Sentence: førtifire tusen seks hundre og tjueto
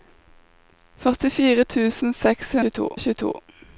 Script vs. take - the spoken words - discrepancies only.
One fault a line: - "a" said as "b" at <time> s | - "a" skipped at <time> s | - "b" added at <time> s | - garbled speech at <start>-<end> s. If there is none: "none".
- "hundre" said as "tjueto" at 2.6 s